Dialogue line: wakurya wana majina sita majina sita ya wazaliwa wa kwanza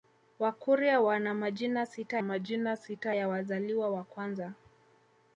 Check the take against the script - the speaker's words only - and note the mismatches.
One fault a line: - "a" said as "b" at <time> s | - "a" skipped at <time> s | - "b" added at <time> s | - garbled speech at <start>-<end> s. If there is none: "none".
none